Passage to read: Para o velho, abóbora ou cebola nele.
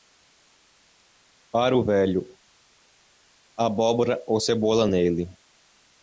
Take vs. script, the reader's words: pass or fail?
pass